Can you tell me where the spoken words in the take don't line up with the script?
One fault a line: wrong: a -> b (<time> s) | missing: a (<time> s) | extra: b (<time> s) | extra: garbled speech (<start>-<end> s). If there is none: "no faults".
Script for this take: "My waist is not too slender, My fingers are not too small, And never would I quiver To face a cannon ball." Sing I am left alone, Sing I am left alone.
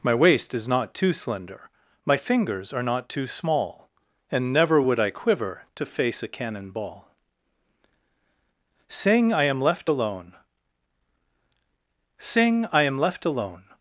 no faults